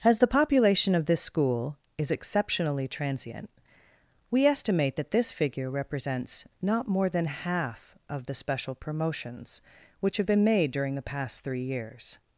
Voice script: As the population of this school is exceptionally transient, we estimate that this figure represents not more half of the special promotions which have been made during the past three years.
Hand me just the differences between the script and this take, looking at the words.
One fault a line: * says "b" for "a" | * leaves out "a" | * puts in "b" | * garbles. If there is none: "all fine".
* puts in "than"